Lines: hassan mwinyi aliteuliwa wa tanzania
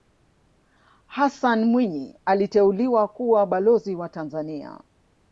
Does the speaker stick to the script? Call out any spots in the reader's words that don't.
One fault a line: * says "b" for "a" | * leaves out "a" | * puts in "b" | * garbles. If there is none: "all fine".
* puts in "kuwa balozi"